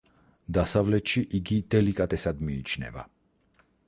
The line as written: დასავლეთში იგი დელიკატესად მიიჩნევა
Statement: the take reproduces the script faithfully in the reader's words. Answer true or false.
true